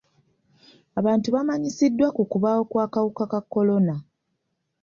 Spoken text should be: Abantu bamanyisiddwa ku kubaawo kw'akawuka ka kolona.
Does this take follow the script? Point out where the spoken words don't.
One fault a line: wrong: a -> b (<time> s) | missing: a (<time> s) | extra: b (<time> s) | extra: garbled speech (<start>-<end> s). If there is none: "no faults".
no faults